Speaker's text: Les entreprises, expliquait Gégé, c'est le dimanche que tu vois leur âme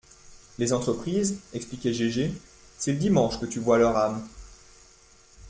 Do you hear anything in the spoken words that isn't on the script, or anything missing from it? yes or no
no